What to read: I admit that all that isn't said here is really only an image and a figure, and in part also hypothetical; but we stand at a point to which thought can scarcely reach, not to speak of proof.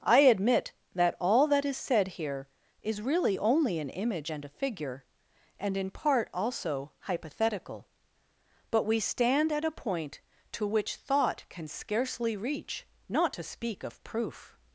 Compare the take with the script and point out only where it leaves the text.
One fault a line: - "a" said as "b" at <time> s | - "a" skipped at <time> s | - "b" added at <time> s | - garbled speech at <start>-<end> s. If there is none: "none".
- "isn't" said as "is" at 1.6 s